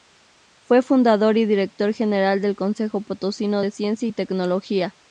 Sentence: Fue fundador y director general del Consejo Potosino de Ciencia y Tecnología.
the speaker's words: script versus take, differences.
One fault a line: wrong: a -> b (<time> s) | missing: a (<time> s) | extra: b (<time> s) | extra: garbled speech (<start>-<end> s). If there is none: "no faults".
no faults